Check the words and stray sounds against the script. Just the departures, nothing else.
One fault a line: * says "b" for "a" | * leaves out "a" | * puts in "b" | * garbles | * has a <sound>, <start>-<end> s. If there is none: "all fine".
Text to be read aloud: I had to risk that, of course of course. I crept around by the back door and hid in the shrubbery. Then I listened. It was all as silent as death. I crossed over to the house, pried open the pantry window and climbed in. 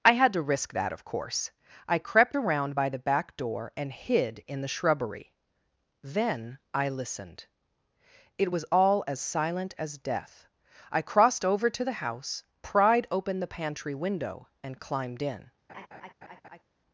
* leaves out "of course"
* has a laugh, 15.7-16.6 s